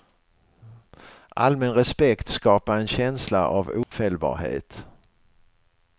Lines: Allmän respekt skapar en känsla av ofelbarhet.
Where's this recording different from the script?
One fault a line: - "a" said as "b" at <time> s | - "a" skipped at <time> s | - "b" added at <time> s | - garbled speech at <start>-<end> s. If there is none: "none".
none